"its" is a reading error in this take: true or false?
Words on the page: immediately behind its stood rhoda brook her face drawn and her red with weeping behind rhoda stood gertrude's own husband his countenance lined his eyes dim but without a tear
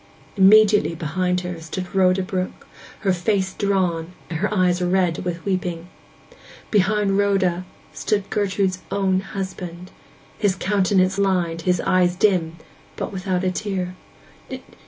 true